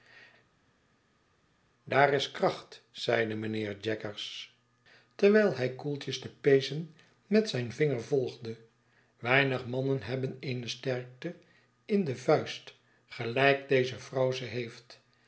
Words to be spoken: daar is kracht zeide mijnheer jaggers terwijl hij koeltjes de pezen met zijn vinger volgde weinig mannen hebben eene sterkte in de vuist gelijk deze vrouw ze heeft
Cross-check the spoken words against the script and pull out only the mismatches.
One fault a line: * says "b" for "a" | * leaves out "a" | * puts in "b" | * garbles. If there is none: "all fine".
all fine